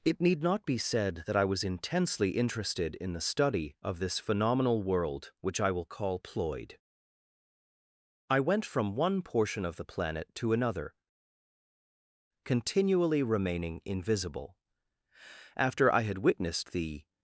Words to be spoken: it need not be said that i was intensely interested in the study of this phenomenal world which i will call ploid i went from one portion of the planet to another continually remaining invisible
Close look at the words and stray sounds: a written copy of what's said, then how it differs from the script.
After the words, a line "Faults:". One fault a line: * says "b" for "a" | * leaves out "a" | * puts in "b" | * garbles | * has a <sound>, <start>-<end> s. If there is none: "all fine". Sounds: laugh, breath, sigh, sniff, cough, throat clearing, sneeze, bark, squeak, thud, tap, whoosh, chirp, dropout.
it need not be said that i was intensely interested in the study of this phenomenal world which i will call ploid i went from one portion of the planet to another continually remaining invisible after i had witnessed the
Faults:
* puts in "after i had witnessed the"